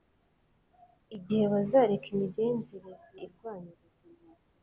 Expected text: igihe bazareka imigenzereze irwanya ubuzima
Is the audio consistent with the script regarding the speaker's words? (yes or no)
yes